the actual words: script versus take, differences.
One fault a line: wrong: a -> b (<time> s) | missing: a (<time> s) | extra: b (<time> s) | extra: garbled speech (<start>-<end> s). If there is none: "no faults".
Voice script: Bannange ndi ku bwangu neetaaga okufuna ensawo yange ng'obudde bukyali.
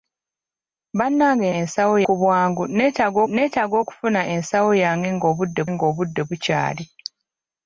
wrong: ndi -> ensawo (1.6 s)
extra: neetaaga (3.3 s)
extra: ng'obudde (5.7 s)